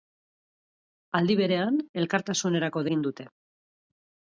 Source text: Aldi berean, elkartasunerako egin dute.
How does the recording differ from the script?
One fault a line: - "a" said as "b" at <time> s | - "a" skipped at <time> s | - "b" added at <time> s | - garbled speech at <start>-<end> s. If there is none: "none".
none